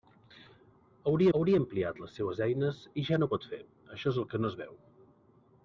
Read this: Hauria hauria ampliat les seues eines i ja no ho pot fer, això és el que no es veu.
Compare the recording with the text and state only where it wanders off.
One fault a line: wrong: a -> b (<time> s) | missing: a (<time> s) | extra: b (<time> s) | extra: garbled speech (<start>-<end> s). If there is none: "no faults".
no faults